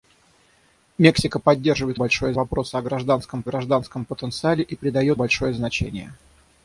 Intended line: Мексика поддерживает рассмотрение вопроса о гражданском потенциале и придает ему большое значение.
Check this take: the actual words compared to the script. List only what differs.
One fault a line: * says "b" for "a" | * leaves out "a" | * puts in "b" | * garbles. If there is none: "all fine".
* says "большое" for "рассмотрение"
* puts in "гражданском"
* leaves out "ему"